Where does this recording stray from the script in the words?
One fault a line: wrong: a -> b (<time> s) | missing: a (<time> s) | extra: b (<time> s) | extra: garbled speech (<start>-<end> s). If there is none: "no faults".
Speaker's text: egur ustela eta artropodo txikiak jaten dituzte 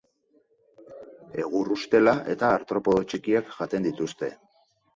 no faults